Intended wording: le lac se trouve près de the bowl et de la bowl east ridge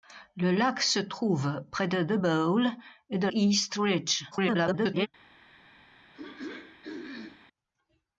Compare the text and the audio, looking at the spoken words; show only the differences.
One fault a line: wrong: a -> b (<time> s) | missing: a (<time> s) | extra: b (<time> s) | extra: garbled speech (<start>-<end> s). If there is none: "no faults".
missing: la bowl (3.3 s)
extra: garbled speech (4.3-5.1 s)